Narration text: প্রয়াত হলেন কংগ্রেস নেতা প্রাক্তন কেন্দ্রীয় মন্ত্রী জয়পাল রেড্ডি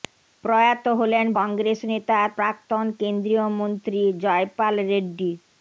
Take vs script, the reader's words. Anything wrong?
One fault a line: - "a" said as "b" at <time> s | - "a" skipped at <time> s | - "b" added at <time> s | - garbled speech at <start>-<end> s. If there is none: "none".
none